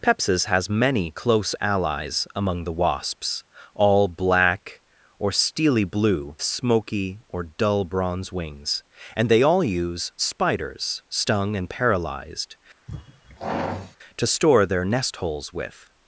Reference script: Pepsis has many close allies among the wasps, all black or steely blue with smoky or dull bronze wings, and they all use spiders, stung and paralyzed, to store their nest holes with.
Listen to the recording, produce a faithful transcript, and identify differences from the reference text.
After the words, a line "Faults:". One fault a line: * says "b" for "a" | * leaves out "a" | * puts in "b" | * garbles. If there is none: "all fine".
Pepsis has many close allies among the wasps, all black or steely blue smoky or dull bronze wings, and they all use spiders, stung and paralyzed, to store their nest holes with.
Faults:
* leaves out "with"